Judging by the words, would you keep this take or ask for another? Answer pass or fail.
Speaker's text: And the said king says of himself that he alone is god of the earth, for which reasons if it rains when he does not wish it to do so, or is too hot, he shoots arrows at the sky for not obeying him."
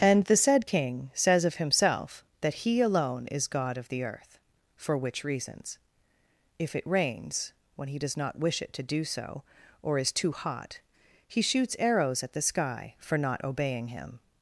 pass